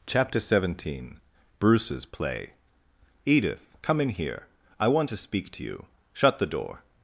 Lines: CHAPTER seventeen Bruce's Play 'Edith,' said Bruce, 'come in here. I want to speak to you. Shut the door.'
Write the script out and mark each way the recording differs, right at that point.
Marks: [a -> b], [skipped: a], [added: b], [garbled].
CHAPTER seventeen Bruce's Play 'Edith,' [skipped: said Bruce,] 'come in here. I want to speak to you. Shut the door.'